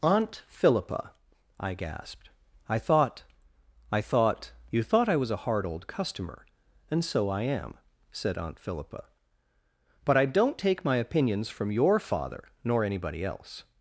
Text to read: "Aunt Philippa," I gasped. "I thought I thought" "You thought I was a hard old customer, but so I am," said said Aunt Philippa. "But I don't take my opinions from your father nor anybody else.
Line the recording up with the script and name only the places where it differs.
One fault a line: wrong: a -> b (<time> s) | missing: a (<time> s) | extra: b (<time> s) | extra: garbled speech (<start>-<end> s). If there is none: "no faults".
wrong: but -> and (6.9 s)
missing: said (8.4 s)